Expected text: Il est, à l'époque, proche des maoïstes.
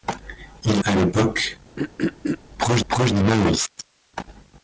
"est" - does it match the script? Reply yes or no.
no